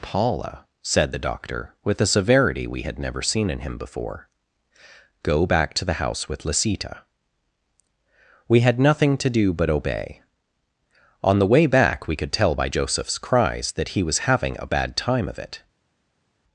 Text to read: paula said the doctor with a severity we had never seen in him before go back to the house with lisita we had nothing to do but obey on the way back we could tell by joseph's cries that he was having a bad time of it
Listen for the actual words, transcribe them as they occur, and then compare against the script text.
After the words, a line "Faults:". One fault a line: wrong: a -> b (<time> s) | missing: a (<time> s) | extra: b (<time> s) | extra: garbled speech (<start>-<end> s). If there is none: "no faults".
paula said the doctor with a severity we had never seen in him before go back to the house with lisita we had nothing to do but obey on the way back we could tell by joseph's cries that he was having a bad time of it
Faults:
no faults